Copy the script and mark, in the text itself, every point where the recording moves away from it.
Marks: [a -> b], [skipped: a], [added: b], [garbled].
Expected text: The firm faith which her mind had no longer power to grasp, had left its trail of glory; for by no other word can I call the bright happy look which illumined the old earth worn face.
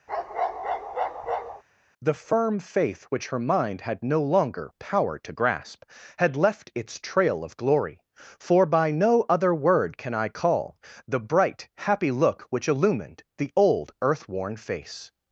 The firm faith which her mind had no longer power to grasp, had left its trail of glory; for by no other word can I call the bright happy look which illumined the old earth worn face.